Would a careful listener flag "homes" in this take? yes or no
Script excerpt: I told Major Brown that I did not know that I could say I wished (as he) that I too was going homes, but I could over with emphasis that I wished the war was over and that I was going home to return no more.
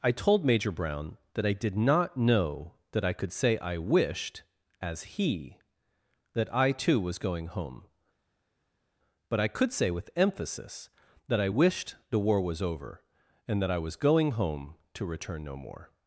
yes